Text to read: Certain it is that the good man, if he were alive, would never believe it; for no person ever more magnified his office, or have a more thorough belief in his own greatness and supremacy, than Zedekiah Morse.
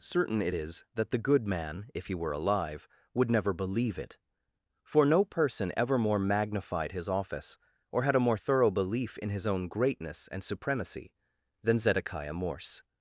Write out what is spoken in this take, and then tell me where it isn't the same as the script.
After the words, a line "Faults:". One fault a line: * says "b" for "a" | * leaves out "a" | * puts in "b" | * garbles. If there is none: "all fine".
Certain it is that the good man, if he were alive, would never believe it; for no person ever more magnified his office, or had a more thorough belief in his own greatness and supremacy, than Zedekiah Morse.
Faults:
* says "had" for "have"